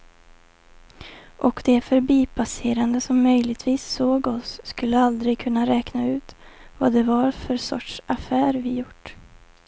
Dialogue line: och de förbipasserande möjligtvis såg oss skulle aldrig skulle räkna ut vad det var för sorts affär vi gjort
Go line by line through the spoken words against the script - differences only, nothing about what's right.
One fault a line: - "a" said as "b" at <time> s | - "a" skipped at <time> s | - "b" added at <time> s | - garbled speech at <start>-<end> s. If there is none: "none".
- "som" added at 3.0 s
- "skulle" said as "kunna" at 5.4 s